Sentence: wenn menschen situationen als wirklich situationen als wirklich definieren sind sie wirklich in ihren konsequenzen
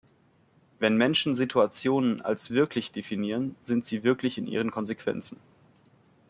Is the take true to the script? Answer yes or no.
no